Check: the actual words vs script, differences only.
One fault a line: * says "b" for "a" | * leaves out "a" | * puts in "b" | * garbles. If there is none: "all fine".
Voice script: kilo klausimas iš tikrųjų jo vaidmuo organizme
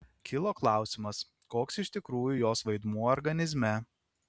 * puts in "koks"
* says "jos" for "jo"